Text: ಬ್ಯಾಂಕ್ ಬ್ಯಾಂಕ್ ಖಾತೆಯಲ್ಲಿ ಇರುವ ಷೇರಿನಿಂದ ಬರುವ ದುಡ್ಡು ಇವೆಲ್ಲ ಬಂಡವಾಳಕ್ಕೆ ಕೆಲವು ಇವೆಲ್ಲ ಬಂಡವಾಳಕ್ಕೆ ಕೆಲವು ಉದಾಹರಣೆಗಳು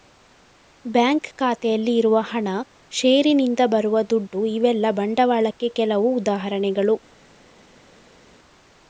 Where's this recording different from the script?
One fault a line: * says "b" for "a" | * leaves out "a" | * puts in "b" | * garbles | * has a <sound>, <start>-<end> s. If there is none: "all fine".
* leaves out "ಬ್ಯಾಂಕ್"
* puts in "ಹಣ"
* leaves out "ಇವೆಲ್ಲ ಬಂಡವಾಳಕ್ಕೆ ಕೆಲವು"